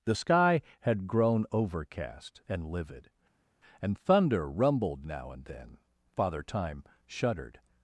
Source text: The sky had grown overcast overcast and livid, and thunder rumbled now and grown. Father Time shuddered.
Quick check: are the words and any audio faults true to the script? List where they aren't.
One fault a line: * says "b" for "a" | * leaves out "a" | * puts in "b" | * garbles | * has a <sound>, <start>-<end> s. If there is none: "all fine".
* leaves out "overcast"
* says "then" for "grown"